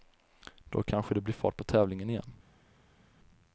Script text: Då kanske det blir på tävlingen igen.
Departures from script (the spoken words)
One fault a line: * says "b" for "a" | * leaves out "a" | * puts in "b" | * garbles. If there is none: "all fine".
* puts in "fart"